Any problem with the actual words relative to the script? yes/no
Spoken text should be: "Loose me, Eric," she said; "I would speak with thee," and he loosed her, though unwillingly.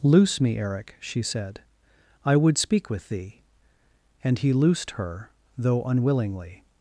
no